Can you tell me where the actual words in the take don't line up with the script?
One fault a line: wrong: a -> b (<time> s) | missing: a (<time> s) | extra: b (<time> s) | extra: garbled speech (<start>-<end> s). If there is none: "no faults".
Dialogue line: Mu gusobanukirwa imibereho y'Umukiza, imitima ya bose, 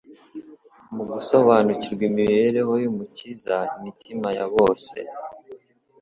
no faults